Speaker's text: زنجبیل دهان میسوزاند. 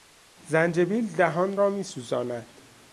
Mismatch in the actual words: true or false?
true